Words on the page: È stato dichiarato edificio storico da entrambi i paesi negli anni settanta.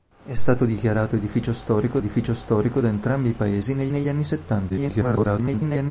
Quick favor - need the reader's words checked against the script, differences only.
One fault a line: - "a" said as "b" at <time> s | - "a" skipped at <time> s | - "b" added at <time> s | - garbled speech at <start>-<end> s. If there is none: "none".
- "edificio storico" added at 2.0 s
- "negli" added at 3.9 s
- garbled speech at 4.7-5.9 s